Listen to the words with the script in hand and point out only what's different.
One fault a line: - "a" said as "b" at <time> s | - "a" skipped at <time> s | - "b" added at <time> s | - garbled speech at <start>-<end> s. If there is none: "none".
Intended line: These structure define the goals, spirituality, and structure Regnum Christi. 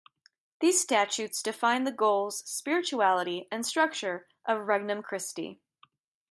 - "structure" said as "statutes" at 0.8 s
- "of" added at 4.5 s